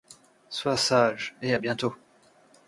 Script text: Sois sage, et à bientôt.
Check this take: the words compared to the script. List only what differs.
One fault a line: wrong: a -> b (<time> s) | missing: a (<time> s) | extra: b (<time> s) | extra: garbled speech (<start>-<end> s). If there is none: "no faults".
no faults